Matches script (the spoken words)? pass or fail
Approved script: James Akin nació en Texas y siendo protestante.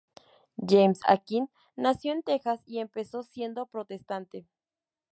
fail